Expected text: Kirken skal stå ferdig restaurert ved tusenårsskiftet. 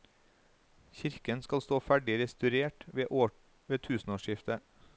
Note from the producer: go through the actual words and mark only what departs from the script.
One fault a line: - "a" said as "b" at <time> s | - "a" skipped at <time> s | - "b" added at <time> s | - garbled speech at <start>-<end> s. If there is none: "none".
none